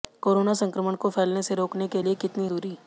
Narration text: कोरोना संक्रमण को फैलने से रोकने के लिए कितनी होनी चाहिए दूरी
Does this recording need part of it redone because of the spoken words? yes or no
yes